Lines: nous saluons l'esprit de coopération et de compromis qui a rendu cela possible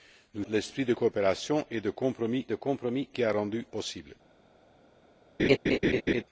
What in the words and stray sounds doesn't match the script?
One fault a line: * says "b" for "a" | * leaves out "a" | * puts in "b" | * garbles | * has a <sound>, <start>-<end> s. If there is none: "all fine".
* leaves out "saluons"
* puts in "de compromis"
* leaves out "cela"
* has a laugh, 5.4-6.2 s